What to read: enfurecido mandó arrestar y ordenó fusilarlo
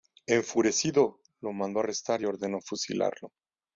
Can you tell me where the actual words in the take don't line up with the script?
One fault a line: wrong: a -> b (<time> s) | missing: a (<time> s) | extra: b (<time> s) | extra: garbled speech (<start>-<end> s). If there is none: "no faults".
extra: lo (1.4 s)